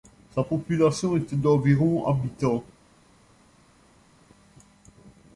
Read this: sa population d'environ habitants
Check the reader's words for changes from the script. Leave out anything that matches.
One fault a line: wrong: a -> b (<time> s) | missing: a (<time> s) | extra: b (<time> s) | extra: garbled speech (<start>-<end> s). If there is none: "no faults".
extra: était (1.2 s)